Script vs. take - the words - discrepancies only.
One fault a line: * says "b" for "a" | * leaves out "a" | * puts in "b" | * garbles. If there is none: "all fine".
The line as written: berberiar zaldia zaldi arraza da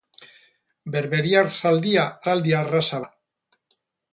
all fine